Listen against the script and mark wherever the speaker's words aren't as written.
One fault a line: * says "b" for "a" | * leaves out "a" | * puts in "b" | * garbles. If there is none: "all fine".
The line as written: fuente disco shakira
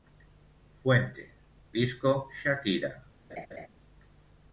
all fine